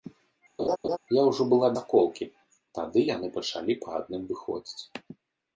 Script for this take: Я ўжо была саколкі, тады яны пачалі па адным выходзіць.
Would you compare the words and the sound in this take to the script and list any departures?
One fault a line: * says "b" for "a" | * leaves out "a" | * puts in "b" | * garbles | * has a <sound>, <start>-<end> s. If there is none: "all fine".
* has a laugh, 0.6-1.0 s